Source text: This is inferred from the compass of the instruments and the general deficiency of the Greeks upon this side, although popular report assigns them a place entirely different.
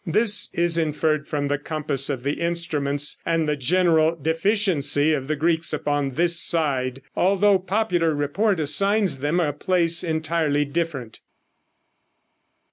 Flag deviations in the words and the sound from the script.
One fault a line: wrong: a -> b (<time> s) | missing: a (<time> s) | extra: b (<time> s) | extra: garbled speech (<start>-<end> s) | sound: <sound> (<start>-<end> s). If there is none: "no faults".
no faults